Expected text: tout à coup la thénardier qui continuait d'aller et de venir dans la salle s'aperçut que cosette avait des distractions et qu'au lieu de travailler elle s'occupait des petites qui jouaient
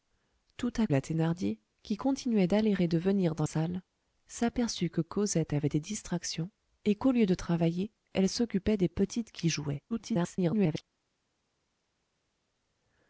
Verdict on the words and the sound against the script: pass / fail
fail